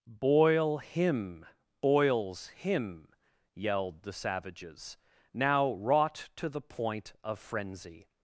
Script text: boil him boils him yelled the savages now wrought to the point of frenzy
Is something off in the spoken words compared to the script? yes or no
no